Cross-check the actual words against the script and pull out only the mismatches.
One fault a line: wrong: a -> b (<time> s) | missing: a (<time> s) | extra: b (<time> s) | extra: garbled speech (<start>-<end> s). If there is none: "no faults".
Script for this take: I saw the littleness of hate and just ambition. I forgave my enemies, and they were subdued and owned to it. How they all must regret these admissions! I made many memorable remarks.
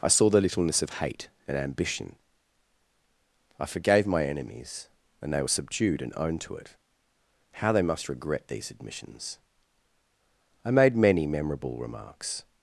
missing: just (1.6 s)
missing: all (7.8 s)